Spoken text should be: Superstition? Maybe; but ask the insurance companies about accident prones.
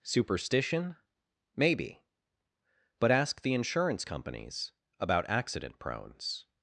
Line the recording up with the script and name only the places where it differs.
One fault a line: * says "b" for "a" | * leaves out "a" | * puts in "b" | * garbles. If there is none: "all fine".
all fine